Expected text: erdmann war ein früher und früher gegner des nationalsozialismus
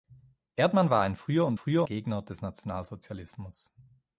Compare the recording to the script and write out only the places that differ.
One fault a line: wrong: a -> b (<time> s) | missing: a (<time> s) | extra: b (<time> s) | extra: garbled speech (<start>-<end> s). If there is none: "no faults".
no faults